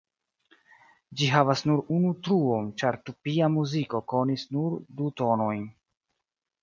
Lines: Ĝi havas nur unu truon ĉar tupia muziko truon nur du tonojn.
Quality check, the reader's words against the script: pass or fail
fail